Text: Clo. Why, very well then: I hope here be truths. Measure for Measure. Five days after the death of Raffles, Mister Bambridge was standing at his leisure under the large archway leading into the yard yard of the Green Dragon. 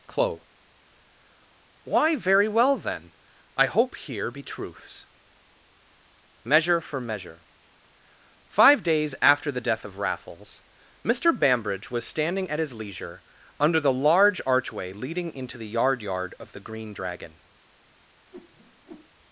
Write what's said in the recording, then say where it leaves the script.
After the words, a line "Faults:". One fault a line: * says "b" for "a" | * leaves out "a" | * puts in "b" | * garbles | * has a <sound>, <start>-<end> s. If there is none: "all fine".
Clo. Why, very well then: I hope here be truths. Measure for Measure. Five days after the death of Raffles, Mister Bambridge was standing at his leisure under the large archway leading into the yard yard of the Green Dragon.
Faults:
* has a whoosh, 18.3-19.1 s